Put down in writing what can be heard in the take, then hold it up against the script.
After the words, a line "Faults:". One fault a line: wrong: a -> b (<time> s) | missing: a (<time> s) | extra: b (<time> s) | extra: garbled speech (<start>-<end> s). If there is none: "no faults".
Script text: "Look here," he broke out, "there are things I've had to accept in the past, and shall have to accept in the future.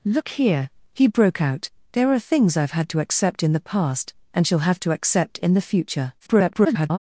"Look here," he broke out, "there are things I've had to accept in the past, and shall have to accept in the future. [garbled]
Faults:
extra: garbled speech (6.2-7.0 s)